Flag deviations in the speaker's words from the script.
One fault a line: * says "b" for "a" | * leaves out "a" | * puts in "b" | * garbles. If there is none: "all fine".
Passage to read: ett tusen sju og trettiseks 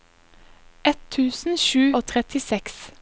all fine